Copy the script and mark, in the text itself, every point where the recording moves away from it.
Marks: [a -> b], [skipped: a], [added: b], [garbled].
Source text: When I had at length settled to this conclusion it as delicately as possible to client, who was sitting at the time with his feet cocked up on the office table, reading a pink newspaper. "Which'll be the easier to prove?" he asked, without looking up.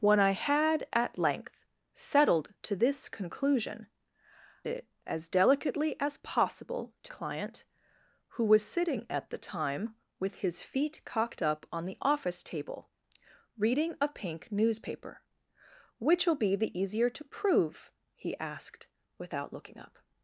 When I had at length settled to this conclusion it as delicately as possible to client, who was sitting at the time with his feet cocked up on the office table, reading a pink newspaper. "Which'll be the easier to prove?" he asked, without looking up.